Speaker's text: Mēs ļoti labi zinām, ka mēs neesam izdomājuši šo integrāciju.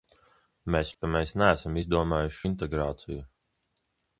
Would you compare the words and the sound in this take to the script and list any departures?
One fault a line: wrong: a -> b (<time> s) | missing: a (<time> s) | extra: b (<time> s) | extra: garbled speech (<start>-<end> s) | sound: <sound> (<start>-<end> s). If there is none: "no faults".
missing: ļoti labi zinām (0.9 s)
missing: šo (2.4 s)